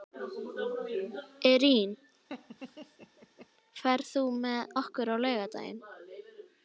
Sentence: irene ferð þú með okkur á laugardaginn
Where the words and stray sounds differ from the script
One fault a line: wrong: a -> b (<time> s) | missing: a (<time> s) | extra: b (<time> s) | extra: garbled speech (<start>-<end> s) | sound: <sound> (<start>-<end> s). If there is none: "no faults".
sound: laugh (2.3-3.5 s)